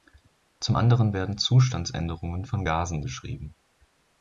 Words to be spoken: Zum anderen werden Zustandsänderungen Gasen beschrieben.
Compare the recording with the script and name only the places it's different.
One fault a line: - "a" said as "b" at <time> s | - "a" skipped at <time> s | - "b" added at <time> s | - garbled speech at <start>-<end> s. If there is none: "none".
- "von" added at 2.4 s